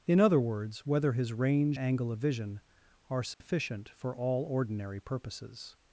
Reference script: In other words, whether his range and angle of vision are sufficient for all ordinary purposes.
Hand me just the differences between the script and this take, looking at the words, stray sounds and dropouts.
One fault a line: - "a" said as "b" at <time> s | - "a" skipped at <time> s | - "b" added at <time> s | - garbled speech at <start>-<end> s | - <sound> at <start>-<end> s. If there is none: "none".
- "and" skipped at 1.8 s
- dropout at 3.3-3.4 s